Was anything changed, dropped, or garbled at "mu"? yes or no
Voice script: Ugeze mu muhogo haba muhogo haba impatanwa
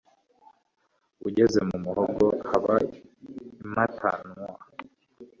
no